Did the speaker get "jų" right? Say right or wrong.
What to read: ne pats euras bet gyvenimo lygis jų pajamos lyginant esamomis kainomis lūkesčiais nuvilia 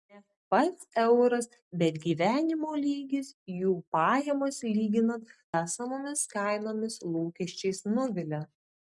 right